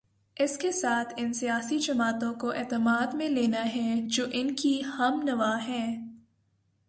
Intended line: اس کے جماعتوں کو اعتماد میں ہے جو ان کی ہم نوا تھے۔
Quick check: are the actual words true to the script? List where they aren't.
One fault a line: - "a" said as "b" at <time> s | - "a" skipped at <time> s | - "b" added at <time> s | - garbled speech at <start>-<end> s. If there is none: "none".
- "ساتھ ان سیاسی" added at 0.7 s
- "لینا" added at 3.3 s
- "تھے" said as "ہیں" at 5.7 s